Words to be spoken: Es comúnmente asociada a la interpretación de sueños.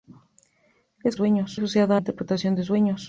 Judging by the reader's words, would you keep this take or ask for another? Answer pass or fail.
fail